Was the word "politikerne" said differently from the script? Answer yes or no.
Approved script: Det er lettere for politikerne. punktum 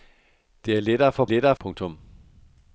yes